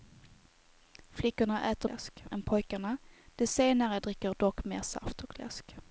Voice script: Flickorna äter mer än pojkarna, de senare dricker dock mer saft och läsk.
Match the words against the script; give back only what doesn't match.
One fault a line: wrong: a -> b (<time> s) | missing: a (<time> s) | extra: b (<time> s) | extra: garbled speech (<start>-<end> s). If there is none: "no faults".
wrong: mer -> läsk (1.9 s)